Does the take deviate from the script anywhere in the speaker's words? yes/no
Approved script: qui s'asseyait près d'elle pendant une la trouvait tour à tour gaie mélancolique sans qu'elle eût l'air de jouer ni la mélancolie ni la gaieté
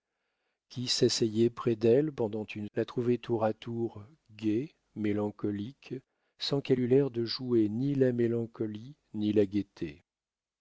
no